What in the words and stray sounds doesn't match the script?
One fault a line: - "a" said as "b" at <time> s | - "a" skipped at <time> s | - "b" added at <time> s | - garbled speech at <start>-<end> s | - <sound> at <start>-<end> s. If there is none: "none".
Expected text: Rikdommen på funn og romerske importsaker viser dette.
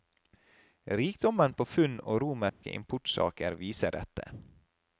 - dropout at 2.5-2.6 s